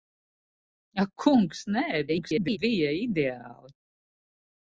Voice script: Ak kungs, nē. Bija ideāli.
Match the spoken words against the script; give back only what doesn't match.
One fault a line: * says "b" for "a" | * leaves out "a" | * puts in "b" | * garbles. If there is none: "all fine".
* garbles